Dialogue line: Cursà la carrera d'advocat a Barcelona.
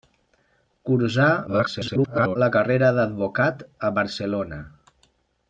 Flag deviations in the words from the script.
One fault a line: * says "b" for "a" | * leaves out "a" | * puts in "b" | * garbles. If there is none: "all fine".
* garbles